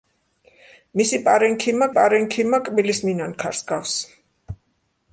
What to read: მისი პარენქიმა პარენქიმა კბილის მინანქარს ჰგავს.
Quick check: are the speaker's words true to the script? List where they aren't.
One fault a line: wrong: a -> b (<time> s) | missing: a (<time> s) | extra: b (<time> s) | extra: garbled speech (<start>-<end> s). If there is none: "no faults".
no faults